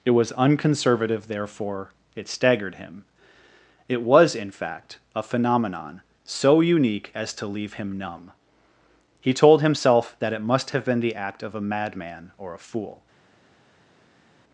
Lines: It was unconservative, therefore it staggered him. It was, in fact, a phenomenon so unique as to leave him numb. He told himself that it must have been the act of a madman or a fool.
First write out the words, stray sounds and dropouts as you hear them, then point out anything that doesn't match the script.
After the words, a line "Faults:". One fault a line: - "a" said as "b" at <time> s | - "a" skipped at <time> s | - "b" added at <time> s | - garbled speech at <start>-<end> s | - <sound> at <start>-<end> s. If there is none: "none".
It was unconservative, therefore it staggered him. It was, in fact, a phenomenon so unique as to leave him numb. He told himself that it must have been the act of a madman or a fool.
Faults:
none